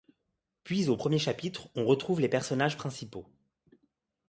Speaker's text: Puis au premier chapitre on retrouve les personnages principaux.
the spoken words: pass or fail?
pass